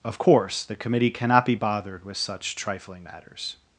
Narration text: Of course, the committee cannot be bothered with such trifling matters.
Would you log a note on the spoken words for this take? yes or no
no